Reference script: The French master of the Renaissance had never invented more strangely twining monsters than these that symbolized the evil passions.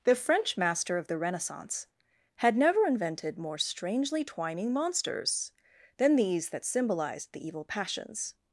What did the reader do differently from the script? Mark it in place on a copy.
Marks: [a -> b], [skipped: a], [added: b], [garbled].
The French master of the Renaissance had never invented more strangely twining monsters than these that symbolized the evil passions.